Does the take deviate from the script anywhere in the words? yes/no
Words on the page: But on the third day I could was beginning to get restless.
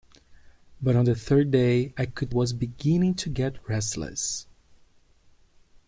no